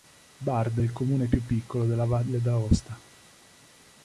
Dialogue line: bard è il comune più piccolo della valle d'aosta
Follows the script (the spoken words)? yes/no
yes